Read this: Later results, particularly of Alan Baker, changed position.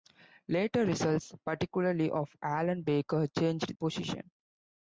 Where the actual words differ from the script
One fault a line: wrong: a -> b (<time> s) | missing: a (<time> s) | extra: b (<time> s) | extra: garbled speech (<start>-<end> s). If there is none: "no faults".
no faults